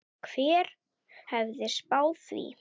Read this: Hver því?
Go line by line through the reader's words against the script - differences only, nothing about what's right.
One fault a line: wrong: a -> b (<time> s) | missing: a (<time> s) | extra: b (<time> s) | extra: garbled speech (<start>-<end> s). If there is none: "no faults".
extra: hefði spáð (1.3 s)